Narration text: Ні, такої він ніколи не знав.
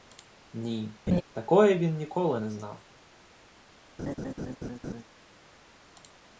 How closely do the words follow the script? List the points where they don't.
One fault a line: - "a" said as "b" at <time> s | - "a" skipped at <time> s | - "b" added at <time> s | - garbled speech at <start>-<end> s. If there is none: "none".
none